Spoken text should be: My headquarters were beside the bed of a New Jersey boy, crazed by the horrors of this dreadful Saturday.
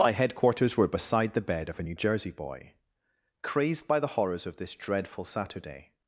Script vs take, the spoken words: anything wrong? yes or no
no